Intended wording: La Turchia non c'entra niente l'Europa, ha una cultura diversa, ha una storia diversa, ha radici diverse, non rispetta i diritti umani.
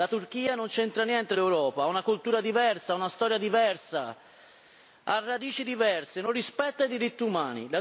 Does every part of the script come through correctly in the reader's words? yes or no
yes